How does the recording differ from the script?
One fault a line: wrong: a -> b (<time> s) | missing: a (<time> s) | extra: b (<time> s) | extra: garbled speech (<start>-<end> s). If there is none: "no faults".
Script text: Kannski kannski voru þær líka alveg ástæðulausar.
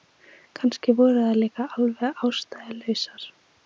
missing: kannski (0.9 s)